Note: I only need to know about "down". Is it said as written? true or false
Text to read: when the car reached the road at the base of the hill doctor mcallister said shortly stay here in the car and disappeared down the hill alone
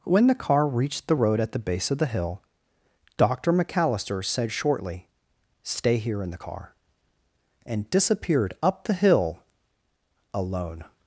false